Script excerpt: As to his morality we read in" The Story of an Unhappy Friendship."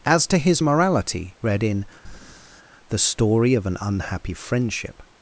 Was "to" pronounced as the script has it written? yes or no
yes